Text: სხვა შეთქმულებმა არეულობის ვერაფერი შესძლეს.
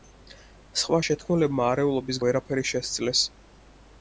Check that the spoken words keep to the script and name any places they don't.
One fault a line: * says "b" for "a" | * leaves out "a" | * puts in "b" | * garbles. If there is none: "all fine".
all fine